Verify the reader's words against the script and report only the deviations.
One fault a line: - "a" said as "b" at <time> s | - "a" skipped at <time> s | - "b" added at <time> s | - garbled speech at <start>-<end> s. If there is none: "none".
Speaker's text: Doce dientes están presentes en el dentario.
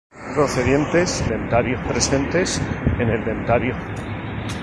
- "están" said as "dentario" at 1.3 s